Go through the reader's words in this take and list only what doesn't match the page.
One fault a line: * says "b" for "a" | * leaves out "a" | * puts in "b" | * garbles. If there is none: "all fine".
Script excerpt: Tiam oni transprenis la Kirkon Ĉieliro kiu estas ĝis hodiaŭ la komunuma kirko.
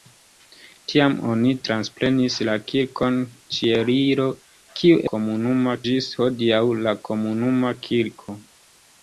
* says "komunuma" for "estas"